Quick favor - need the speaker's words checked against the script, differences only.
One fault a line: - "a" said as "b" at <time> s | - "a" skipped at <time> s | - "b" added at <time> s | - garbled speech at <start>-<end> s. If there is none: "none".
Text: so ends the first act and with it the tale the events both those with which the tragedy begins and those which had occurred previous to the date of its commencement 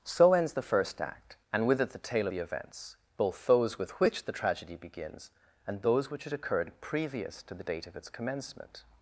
none